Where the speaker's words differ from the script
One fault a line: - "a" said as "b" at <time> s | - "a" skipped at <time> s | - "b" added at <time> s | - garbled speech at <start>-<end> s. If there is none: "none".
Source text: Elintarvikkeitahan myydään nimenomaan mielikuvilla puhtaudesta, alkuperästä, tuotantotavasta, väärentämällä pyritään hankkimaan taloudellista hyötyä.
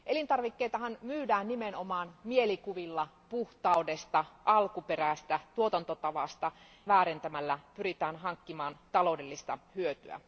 none